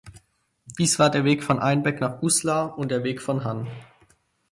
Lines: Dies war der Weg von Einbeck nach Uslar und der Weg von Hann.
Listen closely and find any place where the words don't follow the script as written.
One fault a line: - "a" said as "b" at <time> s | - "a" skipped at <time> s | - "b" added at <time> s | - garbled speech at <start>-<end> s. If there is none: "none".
none